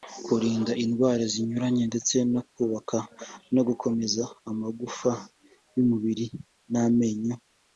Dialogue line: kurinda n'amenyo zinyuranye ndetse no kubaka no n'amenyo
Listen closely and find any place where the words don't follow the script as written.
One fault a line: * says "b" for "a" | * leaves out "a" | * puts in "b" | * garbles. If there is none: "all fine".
* says "indwara" for "n'amenyo"
* puts in "gukomeza amagufa y'umubiri"